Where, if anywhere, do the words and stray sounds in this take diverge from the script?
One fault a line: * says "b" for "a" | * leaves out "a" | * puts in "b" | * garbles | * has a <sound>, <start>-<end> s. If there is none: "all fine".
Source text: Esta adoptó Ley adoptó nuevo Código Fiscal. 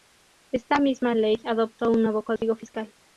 * says "misma" for "adoptó"
* puts in "un"
* has a dropout, 2.4-2.4 s